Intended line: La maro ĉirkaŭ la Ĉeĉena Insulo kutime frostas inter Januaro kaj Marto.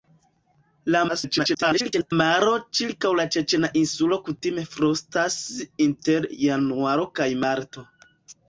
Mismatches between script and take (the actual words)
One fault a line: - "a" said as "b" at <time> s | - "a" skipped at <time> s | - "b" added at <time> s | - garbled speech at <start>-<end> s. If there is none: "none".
- garbled speech at 1.1-2.1 s